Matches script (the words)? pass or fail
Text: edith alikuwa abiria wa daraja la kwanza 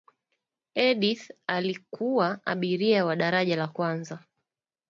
pass